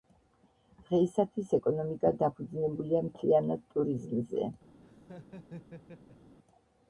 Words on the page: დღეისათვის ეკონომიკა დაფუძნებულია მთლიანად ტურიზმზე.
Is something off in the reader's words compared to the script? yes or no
no